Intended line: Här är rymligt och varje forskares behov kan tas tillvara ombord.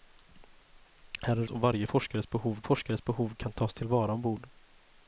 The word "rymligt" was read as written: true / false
false